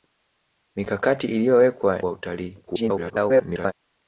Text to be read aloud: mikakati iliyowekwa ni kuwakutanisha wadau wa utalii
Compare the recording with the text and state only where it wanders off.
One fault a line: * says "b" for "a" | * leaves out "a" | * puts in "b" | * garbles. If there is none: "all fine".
* leaves out "ni kuwakutanisha wadau"
* garbles